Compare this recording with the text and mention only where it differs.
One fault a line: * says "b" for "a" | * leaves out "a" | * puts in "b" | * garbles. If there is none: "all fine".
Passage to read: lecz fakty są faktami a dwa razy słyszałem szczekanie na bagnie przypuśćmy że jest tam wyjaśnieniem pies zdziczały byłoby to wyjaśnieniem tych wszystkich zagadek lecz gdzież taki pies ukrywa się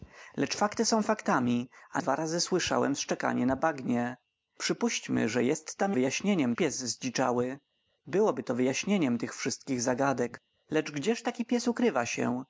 all fine